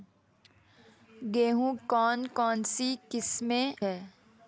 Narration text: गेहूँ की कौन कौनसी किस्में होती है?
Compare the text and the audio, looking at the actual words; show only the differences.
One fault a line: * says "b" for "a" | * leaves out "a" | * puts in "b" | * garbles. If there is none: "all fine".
* leaves out "की"
* leaves out "होती"